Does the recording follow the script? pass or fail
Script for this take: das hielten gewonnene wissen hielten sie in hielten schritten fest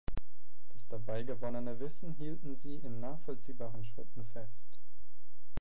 fail